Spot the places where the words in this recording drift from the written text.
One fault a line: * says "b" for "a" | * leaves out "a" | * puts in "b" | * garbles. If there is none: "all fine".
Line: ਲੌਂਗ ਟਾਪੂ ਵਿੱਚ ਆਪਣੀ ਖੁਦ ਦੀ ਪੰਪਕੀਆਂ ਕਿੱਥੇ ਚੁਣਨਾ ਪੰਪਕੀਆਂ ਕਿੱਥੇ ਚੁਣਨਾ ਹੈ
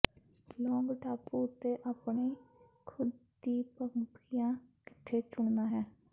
* says "ਉੱਤੇ" for "ਵਿੱਚ"
* leaves out "ਪੰਪਕੀਆਂ ਕਿੱਥੇ ਚੁਣਨਾ"